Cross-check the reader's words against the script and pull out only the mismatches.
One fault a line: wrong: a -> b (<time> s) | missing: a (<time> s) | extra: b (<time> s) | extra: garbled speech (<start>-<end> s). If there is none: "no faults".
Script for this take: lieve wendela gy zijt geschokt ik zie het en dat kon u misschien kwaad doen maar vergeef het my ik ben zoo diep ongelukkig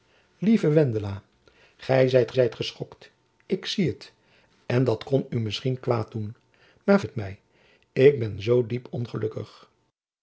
extra: zijt (2.3 s)
missing: vergeef (7.0 s)